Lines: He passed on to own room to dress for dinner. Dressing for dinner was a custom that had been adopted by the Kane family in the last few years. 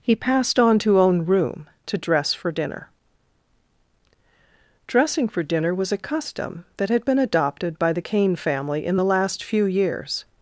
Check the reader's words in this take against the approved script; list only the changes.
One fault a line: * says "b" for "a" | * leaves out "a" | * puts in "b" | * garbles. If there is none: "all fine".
all fine